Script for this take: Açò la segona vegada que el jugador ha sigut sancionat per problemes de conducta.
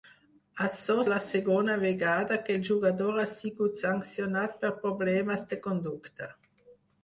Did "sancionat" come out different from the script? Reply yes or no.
no